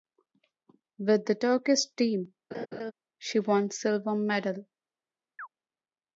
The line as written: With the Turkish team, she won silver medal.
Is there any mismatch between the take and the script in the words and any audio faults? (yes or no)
yes